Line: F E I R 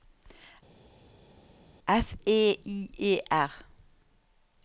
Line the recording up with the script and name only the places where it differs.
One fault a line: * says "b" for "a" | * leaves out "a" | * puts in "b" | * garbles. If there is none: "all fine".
* puts in "E"